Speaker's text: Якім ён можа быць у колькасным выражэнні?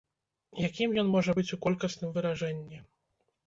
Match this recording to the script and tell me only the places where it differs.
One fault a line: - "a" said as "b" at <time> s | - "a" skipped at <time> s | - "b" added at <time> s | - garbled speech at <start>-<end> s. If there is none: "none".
none